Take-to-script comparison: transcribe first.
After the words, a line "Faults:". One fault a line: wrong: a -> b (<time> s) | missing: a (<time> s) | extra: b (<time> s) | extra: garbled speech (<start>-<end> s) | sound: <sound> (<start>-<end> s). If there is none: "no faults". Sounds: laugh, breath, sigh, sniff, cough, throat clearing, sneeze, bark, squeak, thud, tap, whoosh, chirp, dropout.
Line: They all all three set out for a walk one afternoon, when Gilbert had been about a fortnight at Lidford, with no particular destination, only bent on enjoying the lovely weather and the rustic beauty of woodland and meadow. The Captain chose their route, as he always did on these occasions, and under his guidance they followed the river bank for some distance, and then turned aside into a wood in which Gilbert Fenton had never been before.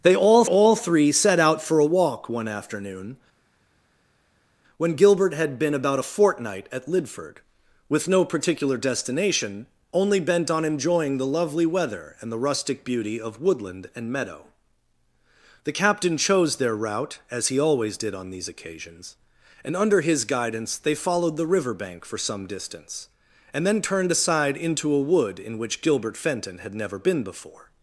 They all all three set out for a walk one afternoon, when Gilbert had been about a fortnight at Lidford, with no particular destination, only bent on enjoying the lovely weather and the rustic beauty of woodland and meadow. The Captain chose their route, as he always did on these occasions, and under his guidance they followed the river bank for some distance, and then turned aside into a wood in which Gilbert Fenton had never been before.
Faults:
no faults